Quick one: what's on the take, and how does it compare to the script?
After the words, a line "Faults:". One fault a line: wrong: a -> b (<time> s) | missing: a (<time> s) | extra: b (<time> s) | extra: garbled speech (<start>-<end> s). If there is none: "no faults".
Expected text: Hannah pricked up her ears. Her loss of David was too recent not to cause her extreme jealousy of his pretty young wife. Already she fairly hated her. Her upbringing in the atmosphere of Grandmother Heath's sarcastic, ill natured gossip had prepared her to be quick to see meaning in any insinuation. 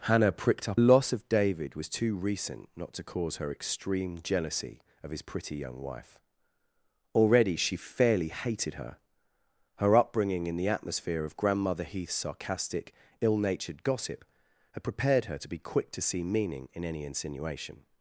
Hannah pricked up loss of David was too recent not to cause her extreme jealousy of his pretty young wife. Already she fairly hated her. Her upbringing in the atmosphere of Grandmother Heath's sarcastic, ill natured gossip had prepared her to be quick to see meaning in any insinuation.
Faults:
missing: her ears Her (0.8 s)